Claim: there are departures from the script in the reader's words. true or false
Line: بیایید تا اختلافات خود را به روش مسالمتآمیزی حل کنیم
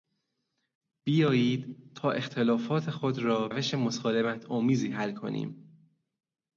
true